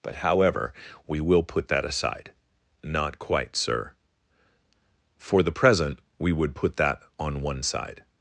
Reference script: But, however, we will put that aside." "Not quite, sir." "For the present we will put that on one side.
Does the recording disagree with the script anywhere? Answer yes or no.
yes